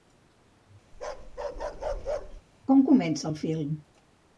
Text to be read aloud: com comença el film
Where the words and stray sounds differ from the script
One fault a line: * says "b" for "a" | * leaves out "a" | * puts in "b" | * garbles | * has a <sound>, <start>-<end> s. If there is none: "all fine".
* has a bark, 0.9-2.4 s